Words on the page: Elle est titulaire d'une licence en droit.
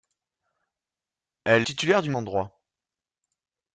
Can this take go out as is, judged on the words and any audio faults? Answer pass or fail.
fail